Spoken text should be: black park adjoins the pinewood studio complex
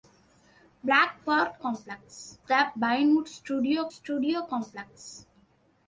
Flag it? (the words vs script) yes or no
yes